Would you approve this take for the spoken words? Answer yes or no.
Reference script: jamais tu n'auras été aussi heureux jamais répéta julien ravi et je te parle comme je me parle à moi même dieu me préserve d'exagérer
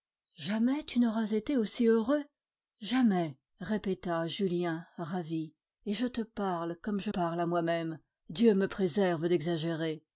no